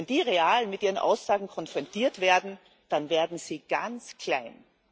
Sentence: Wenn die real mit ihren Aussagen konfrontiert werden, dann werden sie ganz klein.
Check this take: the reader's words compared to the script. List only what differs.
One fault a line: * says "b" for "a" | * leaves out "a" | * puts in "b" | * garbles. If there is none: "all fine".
all fine